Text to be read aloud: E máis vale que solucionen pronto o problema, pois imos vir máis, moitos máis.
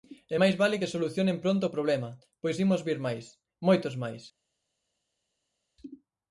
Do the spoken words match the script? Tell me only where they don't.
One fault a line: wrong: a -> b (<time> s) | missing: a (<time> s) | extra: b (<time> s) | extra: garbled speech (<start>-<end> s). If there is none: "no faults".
no faults